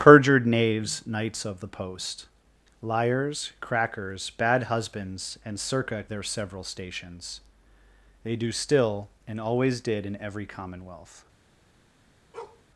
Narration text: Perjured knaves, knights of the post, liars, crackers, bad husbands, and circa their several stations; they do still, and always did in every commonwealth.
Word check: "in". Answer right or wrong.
right